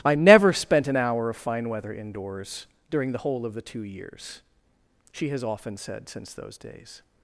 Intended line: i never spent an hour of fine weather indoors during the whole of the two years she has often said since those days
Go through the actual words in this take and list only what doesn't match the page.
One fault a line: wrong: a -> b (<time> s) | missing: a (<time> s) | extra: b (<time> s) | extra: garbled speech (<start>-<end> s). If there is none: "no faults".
no faults